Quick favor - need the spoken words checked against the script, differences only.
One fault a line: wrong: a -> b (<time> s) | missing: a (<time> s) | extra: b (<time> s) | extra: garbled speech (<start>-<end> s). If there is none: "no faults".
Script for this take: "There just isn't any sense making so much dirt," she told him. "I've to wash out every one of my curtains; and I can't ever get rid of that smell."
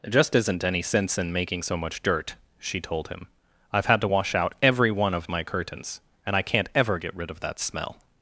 extra: in (1.2 s)
extra: had (3.9 s)